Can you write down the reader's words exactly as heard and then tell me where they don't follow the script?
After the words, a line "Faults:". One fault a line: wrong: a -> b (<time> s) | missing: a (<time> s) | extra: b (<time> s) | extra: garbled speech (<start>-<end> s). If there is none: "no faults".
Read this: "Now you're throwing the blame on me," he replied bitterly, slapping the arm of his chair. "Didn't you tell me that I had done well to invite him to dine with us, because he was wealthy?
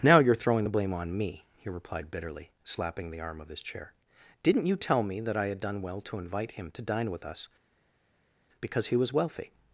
"Now you're throwing the blame on me," he replied bitterly, slapping the arm of his chair. "Didn't you tell me that I had done well to invite him to dine with us, because he was wealthy?
Faults:
no faults